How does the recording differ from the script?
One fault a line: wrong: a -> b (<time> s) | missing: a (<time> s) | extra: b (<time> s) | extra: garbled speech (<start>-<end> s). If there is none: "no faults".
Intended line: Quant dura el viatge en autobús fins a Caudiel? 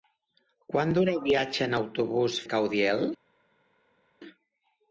missing: fins (2.4 s)